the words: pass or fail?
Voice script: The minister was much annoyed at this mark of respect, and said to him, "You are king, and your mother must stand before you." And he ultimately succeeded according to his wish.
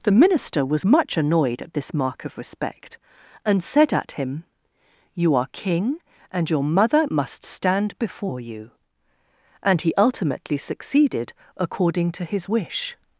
fail